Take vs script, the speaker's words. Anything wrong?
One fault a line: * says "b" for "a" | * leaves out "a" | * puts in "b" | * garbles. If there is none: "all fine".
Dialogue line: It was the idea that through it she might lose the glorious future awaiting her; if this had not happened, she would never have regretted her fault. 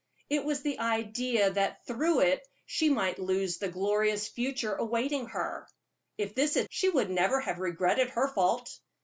* leaves out "not happened"